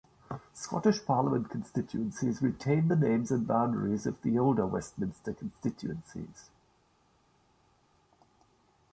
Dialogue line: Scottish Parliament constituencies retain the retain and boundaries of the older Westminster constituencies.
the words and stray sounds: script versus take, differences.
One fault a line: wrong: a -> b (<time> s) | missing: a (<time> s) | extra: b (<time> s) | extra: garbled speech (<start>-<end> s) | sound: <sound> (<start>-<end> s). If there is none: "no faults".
wrong: retain -> names (2.9 s)